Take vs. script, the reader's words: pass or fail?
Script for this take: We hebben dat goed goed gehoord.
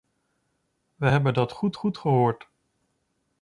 pass